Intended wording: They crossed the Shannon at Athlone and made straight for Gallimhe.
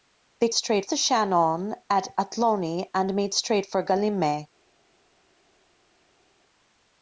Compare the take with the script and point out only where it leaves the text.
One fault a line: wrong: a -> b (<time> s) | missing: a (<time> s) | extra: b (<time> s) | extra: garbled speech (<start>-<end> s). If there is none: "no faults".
wrong: crossed -> straight (0.5 s)